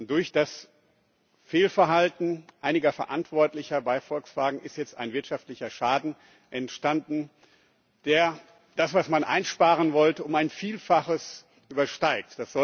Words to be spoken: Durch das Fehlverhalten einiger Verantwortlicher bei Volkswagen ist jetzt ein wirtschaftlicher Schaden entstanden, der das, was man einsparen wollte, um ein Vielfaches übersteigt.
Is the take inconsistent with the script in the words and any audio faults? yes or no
no